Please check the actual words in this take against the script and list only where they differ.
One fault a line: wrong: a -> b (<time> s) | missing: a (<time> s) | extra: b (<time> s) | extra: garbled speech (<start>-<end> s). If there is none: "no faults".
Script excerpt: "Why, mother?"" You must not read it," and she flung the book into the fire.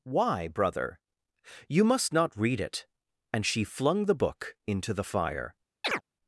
wrong: mother -> brother (0.5 s)